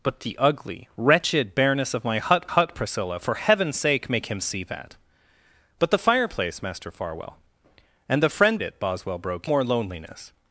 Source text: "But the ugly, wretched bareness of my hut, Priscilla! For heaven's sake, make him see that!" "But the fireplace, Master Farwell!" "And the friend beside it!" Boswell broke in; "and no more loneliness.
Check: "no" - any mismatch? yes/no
yes